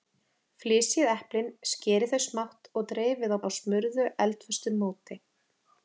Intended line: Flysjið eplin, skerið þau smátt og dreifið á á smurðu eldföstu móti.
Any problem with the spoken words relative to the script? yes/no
no